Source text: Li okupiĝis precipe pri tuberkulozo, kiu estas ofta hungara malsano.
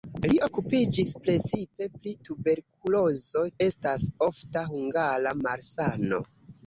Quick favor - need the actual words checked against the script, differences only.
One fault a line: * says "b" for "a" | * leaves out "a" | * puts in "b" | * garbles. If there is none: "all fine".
* leaves out "kiu"